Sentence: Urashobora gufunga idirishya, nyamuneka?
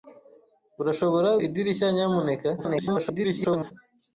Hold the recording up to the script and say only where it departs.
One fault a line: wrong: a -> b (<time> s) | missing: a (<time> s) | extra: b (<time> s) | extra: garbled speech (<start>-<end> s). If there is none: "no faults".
missing: gufunga (1.3 s)
extra: garbled speech (2.6-3.7 s)